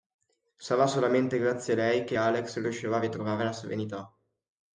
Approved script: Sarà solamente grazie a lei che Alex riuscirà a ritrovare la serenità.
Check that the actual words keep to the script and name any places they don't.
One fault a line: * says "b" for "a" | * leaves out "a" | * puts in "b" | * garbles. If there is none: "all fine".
all fine